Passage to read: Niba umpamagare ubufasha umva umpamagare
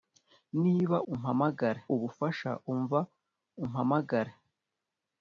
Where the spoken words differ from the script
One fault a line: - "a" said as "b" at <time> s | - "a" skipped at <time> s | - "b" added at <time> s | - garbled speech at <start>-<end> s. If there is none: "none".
none